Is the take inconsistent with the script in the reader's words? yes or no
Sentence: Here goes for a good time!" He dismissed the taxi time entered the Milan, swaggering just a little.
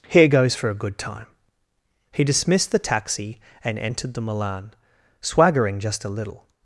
yes